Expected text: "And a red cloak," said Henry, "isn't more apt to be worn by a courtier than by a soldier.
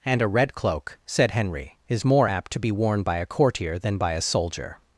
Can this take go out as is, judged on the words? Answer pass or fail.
fail